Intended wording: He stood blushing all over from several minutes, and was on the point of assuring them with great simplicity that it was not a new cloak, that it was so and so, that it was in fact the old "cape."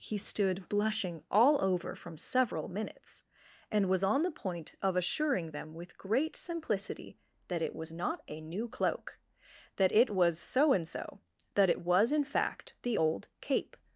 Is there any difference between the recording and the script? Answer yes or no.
no